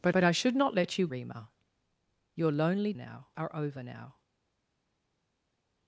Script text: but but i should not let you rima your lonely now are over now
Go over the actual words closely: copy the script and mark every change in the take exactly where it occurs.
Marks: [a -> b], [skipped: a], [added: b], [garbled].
but but i should not let you rima your lonely now are over now